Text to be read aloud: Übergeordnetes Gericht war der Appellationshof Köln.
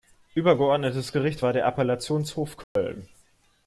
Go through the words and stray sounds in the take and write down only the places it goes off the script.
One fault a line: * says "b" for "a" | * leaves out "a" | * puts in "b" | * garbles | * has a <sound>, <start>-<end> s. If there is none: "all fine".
* has a dropout, 2.6-2.8 s